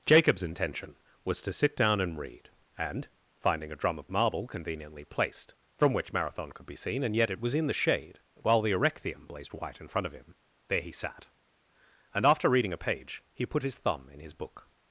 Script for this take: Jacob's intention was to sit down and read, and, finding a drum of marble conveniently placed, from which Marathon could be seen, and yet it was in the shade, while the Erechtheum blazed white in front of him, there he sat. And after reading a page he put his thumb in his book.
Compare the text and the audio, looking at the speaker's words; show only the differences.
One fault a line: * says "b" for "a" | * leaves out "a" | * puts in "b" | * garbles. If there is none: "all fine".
all fine